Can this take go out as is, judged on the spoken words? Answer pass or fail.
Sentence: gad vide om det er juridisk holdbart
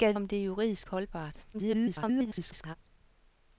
fail